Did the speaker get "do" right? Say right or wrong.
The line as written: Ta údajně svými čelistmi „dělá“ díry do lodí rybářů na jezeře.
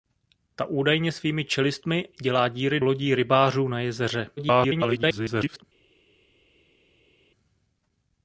wrong